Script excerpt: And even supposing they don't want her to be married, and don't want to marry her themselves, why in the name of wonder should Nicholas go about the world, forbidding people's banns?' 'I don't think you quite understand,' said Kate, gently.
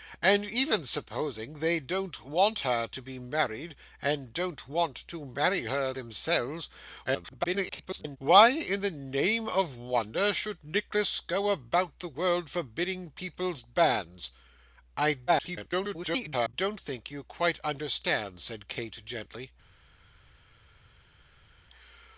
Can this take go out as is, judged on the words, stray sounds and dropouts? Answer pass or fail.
fail